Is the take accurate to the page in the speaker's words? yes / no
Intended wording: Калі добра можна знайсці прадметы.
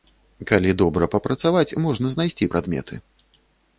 no